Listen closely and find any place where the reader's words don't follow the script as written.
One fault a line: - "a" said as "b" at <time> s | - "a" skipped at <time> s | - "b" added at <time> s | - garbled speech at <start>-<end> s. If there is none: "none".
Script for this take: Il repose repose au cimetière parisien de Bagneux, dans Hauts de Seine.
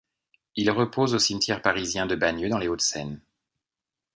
- "repose" skipped at 1.1 s
- "les" added at 2.6 s